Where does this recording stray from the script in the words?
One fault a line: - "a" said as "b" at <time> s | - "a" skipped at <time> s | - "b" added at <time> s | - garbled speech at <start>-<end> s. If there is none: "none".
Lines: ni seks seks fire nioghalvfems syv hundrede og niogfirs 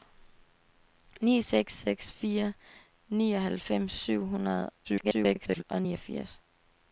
- garbled speech at 4.8-5.6 s